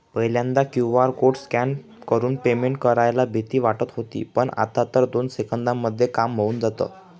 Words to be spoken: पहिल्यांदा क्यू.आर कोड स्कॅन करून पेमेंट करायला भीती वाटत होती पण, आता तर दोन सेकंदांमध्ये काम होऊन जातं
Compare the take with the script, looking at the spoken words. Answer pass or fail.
pass